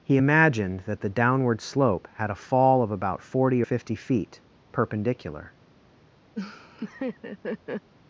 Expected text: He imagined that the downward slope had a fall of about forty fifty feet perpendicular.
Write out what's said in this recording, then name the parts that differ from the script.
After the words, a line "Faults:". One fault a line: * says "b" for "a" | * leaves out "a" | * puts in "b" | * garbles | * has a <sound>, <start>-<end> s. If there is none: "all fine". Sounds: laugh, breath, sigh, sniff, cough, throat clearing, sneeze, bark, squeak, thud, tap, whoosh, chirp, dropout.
He imagined that the downward slope had a fall of about forty fifty feet perpendicular.
Faults:
* has a laugh, 6.4-7.9 s